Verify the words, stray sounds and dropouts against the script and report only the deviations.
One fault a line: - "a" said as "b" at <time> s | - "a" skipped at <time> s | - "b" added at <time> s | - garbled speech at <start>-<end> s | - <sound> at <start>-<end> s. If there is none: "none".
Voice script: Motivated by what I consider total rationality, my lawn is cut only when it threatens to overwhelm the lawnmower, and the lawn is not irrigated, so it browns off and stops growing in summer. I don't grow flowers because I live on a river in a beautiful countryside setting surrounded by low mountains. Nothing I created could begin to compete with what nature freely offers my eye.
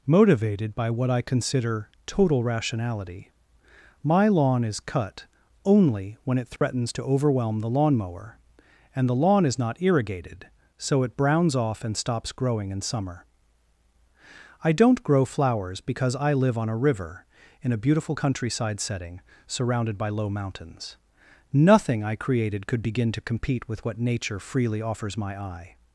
- dropout at 6.6-6.6 s